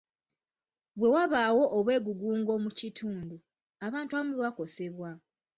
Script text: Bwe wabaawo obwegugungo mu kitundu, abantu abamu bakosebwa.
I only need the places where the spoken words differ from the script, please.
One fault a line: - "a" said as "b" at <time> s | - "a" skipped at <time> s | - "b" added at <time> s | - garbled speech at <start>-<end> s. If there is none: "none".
none